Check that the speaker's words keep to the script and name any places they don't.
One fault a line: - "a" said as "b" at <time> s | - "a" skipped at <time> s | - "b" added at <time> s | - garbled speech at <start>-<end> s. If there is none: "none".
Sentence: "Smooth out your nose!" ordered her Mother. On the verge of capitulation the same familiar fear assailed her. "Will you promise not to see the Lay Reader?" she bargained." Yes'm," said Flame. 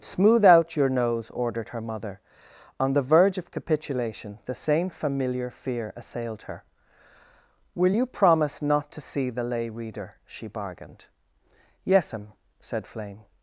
none